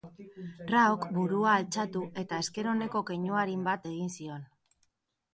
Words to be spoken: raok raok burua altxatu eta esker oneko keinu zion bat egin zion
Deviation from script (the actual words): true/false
true